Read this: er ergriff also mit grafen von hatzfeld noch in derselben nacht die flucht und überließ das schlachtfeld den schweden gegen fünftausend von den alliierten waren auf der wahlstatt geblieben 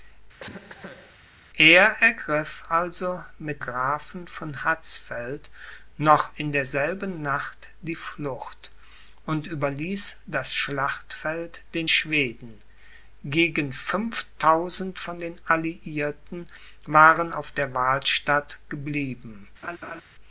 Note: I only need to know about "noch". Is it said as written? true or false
true